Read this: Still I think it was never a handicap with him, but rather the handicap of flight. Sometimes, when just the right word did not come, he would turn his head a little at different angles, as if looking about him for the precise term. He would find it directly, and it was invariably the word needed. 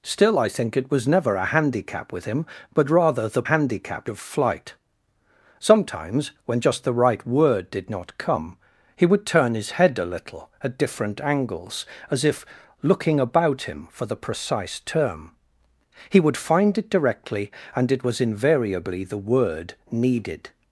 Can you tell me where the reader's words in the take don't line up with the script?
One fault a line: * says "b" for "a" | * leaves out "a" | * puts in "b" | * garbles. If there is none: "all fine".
all fine